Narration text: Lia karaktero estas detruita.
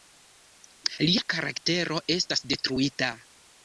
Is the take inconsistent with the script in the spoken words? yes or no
no